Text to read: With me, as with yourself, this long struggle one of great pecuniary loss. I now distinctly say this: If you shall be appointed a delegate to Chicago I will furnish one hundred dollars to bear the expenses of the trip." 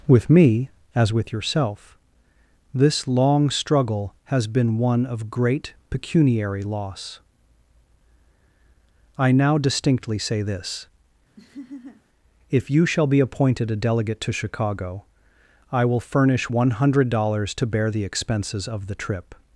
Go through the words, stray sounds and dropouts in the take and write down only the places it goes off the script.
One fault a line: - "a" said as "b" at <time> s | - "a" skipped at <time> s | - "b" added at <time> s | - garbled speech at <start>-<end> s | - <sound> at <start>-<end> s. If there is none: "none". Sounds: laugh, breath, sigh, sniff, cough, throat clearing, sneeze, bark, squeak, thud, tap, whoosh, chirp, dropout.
- "has been" added at 4.2 s
- laugh at 11.4-12.0 s